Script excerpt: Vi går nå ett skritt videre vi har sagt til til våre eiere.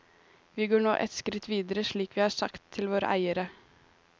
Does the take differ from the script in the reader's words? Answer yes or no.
yes